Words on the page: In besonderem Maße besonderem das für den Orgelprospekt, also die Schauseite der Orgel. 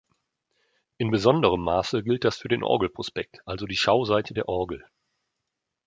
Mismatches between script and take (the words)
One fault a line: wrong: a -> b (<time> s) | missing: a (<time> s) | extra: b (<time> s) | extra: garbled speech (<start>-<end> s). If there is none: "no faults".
wrong: besonderem -> gilt (2.0 s)